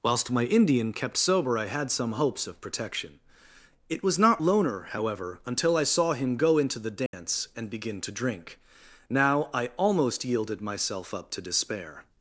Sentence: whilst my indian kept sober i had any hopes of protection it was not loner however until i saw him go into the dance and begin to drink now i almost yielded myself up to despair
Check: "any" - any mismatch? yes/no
yes